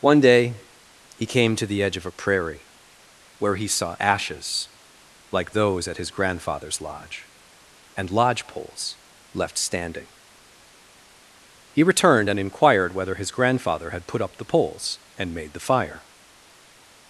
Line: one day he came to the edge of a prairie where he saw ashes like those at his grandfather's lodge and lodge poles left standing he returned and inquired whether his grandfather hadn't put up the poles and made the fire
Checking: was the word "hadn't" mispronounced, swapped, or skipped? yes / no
yes